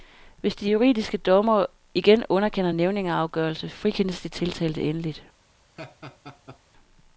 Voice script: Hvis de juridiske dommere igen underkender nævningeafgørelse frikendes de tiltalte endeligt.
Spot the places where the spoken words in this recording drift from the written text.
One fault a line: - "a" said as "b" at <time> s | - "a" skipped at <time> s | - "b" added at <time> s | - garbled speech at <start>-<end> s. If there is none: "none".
none